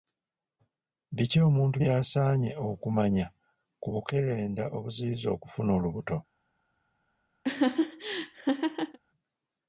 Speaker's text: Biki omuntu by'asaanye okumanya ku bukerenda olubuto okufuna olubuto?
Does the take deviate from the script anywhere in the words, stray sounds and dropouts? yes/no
yes